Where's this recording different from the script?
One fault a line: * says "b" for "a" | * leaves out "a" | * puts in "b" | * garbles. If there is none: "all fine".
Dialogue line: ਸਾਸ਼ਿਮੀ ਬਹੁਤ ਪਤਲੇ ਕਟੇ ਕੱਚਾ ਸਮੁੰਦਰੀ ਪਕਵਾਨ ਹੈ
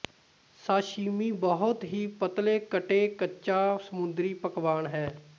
* puts in "ਹੀ"